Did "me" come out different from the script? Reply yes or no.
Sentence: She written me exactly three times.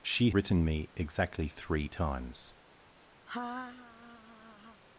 no